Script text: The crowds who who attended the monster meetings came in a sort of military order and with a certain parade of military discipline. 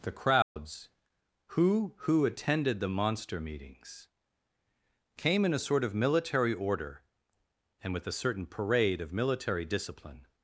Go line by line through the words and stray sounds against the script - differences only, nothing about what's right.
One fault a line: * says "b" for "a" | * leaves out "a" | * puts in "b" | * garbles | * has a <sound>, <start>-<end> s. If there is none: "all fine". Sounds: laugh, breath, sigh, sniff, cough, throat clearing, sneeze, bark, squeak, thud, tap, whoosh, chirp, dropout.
* has a dropout, 0.4-0.6 s